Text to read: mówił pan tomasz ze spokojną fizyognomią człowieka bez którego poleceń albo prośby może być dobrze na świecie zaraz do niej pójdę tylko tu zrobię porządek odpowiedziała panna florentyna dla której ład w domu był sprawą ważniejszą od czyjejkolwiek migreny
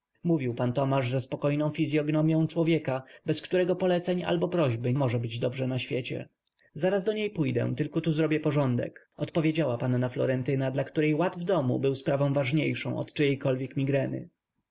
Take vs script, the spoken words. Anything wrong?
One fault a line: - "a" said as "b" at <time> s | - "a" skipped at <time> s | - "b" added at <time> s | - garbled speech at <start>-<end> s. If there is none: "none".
none